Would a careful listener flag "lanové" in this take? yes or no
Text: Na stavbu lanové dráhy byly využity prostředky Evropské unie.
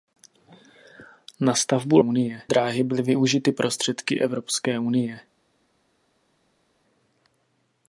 yes